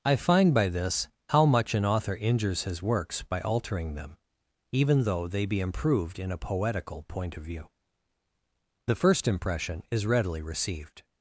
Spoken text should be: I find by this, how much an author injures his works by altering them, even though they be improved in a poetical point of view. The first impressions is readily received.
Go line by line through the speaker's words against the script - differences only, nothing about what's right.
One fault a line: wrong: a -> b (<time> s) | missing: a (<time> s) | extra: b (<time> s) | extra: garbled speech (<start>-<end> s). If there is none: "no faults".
wrong: impressions -> impression (9.3 s)